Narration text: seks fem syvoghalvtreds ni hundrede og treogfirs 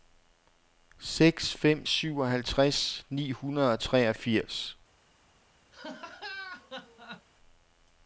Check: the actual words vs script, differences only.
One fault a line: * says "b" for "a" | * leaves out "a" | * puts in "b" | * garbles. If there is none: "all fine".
all fine